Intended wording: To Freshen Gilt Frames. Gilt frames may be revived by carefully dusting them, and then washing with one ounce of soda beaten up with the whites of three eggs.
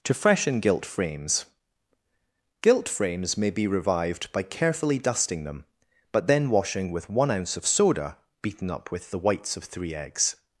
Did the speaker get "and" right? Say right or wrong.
wrong